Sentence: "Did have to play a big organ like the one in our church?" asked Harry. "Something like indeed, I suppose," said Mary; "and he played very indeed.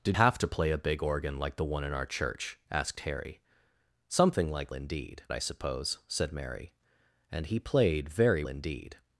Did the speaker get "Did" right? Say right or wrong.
right